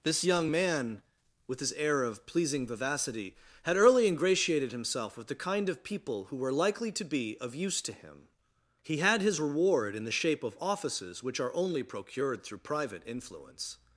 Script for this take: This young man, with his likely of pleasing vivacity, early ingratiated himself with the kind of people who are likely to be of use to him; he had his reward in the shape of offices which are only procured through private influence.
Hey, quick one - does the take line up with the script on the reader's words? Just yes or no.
no